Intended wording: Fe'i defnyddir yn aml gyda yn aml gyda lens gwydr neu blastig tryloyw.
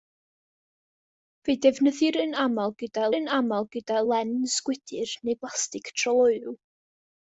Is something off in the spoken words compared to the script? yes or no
no